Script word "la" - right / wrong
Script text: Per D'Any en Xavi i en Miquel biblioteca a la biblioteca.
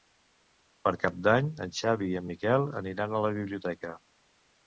right